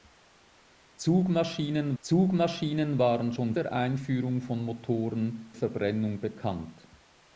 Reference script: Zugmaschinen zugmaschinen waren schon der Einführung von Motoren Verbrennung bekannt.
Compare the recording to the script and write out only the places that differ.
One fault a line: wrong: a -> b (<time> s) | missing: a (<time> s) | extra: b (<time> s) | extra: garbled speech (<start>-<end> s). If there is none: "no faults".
no faults